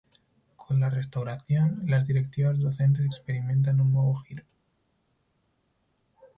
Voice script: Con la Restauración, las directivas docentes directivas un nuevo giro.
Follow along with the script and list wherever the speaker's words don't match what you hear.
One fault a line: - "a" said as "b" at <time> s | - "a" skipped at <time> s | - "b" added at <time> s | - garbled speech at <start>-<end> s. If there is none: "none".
- "directivas" said as "experimentan" at 3.0 s